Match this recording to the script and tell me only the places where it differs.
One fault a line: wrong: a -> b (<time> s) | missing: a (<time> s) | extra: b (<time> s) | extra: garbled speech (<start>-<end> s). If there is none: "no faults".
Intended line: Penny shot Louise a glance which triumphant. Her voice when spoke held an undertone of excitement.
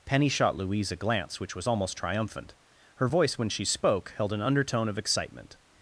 extra: was almost (1.6 s)
extra: she (3.5 s)